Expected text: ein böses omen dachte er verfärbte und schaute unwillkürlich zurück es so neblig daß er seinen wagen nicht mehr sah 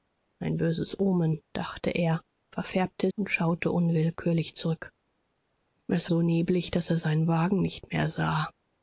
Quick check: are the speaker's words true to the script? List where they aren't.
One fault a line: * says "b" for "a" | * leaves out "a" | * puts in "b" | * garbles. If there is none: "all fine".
all fine